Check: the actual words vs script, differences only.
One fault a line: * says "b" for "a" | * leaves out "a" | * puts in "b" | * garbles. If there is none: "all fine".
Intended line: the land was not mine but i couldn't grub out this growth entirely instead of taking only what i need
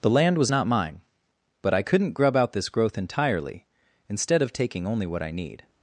all fine